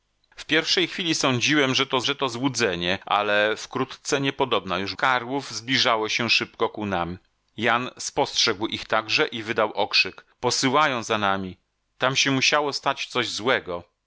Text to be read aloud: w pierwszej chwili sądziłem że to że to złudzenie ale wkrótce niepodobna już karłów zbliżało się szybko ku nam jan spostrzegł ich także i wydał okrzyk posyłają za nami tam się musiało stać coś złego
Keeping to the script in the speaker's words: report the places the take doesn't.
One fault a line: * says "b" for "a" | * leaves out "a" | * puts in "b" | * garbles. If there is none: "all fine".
all fine